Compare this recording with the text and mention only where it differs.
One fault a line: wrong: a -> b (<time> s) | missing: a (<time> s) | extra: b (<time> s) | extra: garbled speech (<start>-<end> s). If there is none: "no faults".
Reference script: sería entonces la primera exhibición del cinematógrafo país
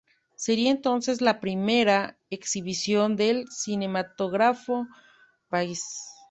no faults